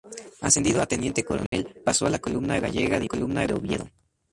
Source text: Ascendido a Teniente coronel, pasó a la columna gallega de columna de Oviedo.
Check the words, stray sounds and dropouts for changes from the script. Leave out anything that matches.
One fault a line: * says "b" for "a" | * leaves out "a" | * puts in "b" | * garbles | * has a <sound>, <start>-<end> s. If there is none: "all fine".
* has a dropout, 1.5-1.5 s